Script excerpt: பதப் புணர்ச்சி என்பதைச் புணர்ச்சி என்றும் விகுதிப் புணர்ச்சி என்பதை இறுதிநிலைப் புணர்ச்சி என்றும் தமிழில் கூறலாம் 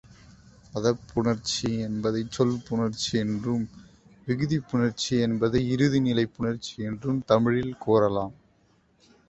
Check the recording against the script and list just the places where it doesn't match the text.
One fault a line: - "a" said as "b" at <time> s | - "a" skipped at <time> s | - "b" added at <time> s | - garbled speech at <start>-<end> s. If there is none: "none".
- "சொல்" added at 2.3 s